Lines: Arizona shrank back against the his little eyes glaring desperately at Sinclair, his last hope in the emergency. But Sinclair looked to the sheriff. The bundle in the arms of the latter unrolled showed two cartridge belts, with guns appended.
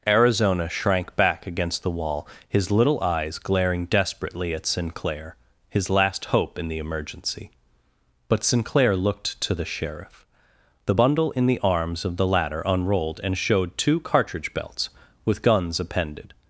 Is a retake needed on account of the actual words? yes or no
yes